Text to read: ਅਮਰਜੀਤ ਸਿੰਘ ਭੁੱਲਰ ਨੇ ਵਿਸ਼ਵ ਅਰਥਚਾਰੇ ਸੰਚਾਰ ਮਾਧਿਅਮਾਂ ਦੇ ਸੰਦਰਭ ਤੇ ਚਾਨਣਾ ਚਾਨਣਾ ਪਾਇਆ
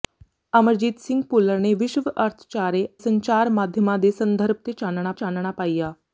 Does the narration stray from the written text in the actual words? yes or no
no